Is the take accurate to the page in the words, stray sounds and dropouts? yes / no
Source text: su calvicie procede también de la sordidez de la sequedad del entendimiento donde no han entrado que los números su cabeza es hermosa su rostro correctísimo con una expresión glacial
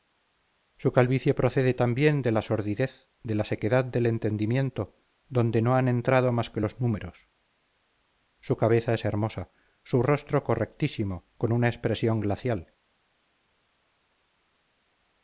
no